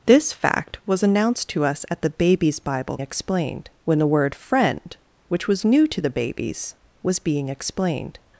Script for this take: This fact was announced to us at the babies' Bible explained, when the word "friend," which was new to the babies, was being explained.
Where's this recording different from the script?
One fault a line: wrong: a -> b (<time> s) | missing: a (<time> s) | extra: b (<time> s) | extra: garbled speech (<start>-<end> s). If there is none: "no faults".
no faults